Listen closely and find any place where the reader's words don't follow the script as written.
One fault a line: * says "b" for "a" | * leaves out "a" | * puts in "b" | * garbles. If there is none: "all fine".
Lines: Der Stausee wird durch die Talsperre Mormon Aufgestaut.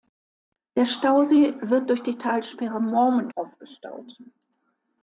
all fine